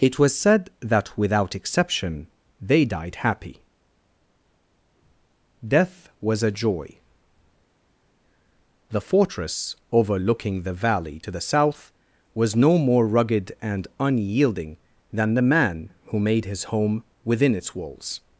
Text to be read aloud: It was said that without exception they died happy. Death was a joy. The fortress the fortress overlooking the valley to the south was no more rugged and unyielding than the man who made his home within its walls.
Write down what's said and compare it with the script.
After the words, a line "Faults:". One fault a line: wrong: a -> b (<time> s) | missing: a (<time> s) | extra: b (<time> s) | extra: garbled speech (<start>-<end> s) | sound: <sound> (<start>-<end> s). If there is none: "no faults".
It was said that without exception they died happy. Death was a joy. The fortress overlooking the valley to the south was no more rugged and unyielding than the man who made his home within its walls.
Faults:
missing: the fortress (9.7 s)